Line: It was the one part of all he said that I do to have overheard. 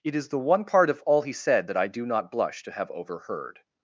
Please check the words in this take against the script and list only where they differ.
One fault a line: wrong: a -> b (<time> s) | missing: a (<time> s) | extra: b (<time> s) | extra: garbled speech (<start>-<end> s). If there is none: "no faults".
wrong: was -> is (0.1 s)
extra: not blush (2.1 s)